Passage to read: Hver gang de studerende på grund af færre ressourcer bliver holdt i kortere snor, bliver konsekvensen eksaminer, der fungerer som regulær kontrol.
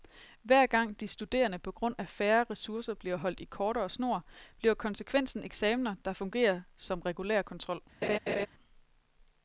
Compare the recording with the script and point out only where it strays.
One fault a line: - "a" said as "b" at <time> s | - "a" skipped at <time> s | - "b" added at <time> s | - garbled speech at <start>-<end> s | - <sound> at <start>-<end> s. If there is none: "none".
- laugh at 8.0-8.5 s